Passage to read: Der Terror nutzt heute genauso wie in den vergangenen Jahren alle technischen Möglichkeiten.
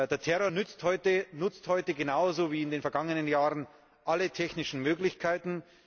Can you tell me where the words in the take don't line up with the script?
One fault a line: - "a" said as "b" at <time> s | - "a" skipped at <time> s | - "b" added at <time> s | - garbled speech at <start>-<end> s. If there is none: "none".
none